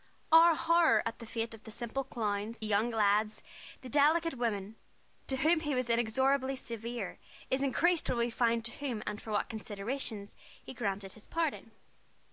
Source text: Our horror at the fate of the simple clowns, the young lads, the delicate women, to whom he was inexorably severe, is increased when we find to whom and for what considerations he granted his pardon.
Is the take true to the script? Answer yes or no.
no